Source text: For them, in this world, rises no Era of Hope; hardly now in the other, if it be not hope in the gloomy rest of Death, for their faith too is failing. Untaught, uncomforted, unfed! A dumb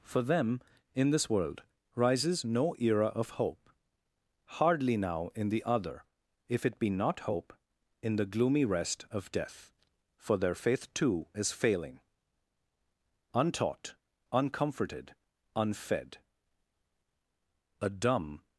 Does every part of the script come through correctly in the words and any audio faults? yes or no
yes